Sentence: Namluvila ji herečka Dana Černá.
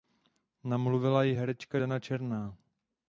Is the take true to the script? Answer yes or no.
yes